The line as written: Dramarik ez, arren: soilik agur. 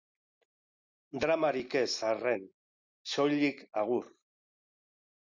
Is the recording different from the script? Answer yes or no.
no